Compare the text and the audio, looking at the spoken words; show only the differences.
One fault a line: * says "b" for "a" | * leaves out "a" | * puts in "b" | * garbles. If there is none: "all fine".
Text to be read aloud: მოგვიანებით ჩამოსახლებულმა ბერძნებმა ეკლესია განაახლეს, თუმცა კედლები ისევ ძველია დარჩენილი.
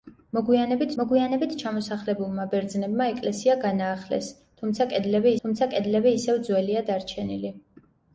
* puts in "მოგვიანებით"
* puts in "თუმცა კედლები"